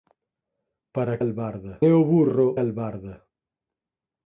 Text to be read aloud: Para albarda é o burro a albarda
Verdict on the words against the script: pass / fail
pass